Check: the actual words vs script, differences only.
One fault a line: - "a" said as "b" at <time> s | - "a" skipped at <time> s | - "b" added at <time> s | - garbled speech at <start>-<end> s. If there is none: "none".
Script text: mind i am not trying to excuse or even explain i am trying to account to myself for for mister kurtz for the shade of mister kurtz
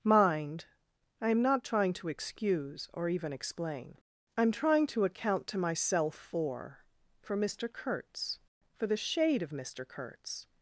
none